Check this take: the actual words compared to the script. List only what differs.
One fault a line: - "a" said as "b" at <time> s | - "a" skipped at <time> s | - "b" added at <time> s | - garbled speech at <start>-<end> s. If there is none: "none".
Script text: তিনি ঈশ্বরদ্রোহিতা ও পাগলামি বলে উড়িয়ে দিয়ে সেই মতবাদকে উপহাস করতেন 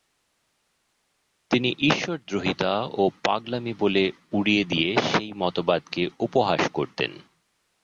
none